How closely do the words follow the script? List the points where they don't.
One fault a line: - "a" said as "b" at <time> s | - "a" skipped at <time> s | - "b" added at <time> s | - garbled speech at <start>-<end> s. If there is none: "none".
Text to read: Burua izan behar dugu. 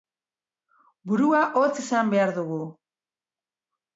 - "hotz" added at 1.6 s